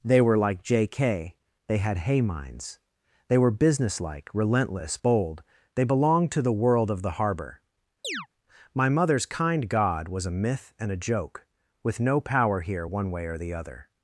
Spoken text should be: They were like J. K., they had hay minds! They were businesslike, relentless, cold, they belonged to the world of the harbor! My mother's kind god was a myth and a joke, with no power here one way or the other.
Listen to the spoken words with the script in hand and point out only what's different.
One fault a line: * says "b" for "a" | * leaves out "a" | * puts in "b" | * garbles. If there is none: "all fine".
* says "bold" for "cold"